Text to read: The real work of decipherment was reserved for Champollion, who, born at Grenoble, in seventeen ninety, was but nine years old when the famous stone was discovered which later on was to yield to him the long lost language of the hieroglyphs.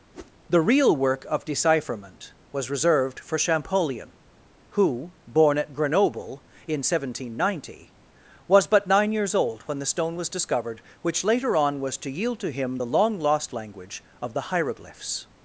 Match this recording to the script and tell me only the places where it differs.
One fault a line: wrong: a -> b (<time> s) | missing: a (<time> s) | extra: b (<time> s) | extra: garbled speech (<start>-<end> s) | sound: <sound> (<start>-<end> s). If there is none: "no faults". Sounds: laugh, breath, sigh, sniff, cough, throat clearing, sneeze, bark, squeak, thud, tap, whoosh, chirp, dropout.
sound: whoosh (0.1-0.3 s)
missing: famous (9.9 s)